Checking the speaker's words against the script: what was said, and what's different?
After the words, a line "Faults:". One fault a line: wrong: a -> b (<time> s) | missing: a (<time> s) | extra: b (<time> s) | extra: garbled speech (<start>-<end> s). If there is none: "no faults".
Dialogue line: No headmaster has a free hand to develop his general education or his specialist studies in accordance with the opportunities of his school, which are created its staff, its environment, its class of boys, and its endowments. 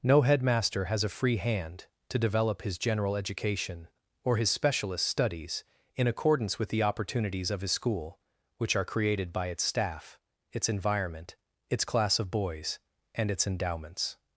No headmaster has a free hand to develop his general education or his specialist studies in accordance with the opportunities of his school, which are created by its staff, its environment, its class of boys, and its endowments.
Faults:
extra: by (9.3 s)